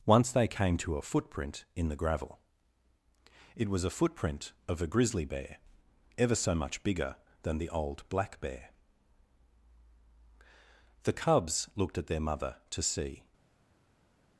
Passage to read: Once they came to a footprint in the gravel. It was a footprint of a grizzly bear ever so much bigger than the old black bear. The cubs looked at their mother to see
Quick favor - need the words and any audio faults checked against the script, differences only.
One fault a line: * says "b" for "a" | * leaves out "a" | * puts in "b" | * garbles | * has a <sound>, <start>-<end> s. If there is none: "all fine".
all fine